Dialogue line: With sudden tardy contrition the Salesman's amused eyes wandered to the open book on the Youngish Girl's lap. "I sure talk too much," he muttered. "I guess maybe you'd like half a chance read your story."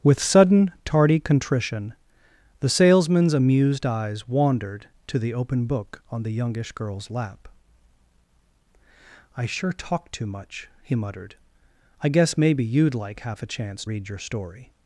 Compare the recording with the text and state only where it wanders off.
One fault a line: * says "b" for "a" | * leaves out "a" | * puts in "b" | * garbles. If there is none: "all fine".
all fine